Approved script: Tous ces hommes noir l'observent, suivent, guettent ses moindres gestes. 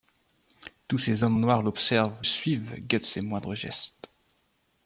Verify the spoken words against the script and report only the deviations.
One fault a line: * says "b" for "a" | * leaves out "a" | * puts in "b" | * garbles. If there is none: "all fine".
all fine